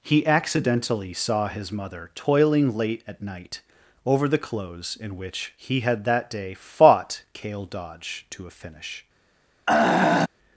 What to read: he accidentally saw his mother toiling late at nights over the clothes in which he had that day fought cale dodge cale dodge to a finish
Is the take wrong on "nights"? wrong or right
wrong